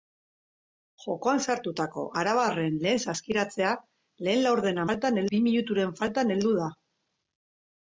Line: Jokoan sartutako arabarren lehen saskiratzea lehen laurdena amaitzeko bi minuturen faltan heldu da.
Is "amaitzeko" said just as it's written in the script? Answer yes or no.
no